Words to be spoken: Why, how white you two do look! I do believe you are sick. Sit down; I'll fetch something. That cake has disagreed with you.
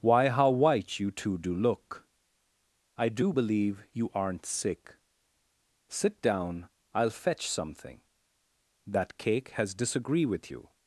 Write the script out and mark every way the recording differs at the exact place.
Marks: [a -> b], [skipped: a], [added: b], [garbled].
Why, how white you two do look! I do believe you [are -> aren't] sick. Sit down; I'll fetch something. That cake has [disagreed -> disagree] with you.